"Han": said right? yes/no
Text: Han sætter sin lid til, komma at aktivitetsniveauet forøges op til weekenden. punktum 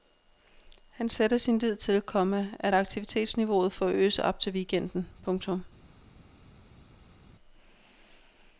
yes